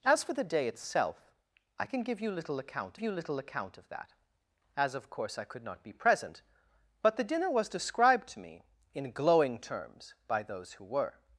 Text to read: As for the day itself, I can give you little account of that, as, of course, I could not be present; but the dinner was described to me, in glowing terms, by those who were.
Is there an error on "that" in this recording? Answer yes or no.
no